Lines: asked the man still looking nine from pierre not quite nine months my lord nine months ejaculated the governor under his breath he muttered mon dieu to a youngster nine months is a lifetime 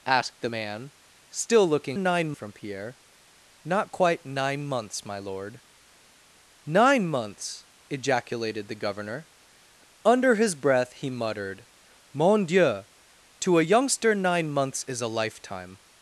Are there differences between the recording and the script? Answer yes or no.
no